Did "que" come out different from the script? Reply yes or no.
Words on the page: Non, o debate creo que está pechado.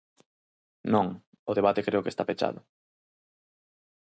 no